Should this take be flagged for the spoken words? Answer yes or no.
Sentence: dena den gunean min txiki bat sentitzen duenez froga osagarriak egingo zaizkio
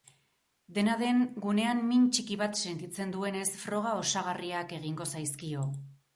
no